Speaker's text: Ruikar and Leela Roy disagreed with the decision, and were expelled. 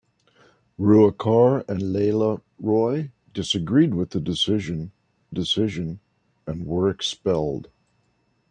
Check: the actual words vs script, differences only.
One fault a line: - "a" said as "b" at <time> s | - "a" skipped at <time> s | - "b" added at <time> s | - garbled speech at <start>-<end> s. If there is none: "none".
- "decision" added at 5.3 s